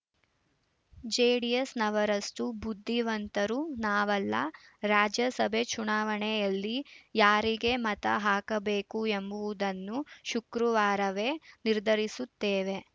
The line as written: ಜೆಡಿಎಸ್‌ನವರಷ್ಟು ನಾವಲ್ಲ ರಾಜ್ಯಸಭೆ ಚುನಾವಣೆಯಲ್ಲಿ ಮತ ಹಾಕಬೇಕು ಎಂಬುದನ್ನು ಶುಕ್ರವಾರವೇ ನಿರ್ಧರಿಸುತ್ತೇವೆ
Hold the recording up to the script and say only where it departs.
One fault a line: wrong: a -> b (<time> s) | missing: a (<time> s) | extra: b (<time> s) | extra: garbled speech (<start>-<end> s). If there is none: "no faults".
extra: ಬುದ್ಧಿವಂತರು (2.6 s)
extra: ಯಾರಿಗೆ (7.2 s)